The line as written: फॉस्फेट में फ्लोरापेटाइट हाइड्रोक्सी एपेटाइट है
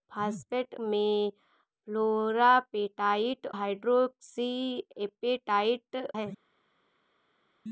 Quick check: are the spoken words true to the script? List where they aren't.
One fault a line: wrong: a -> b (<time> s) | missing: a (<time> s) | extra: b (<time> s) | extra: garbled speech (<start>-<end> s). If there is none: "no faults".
no faults